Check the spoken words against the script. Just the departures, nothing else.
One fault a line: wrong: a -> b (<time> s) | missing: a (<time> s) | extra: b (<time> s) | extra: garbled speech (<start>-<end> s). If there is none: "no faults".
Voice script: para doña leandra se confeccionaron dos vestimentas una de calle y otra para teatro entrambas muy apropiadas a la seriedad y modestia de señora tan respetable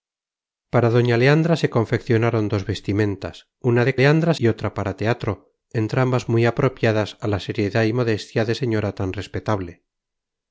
wrong: calle -> leandra (4.0 s)